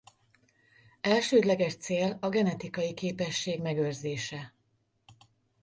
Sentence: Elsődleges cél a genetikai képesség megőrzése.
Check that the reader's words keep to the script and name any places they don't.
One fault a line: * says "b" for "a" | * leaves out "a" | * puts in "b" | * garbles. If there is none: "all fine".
all fine